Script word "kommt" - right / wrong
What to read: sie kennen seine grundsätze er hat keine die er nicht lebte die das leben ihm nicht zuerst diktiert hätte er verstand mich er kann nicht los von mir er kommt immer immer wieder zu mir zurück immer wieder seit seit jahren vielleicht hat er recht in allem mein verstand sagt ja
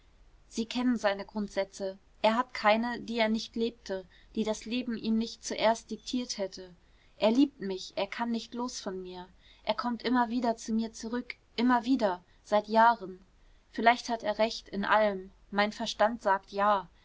right